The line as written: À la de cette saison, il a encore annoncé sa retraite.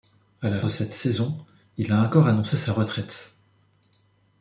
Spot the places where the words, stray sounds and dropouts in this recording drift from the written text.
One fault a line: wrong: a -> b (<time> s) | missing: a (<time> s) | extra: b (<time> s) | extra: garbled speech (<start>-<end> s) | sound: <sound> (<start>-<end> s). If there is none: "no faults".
no faults